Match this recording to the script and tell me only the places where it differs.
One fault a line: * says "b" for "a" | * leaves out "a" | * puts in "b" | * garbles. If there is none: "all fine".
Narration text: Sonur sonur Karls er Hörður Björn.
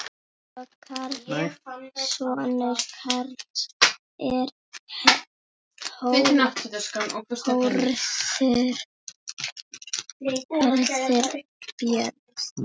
* leaves out "sonur"